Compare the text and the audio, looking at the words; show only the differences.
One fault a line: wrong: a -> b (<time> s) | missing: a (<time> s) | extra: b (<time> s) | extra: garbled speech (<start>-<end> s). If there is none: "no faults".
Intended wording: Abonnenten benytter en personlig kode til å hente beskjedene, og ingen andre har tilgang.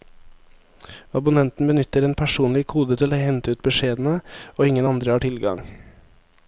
extra: ut (3.5 s)